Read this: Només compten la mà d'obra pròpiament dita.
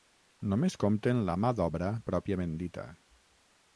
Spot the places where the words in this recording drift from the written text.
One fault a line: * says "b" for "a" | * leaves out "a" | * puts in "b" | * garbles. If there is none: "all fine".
all fine